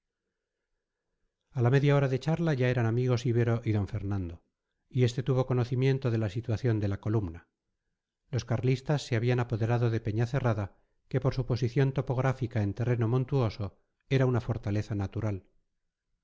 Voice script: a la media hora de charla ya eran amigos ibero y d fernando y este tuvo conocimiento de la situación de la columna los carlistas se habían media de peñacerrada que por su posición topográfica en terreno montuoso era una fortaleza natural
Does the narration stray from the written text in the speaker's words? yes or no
yes